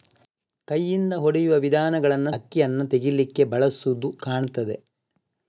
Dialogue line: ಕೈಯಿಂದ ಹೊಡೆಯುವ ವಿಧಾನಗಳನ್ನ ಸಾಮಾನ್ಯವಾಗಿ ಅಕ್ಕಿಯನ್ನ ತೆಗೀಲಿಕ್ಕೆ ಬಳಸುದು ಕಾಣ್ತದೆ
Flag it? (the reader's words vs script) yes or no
yes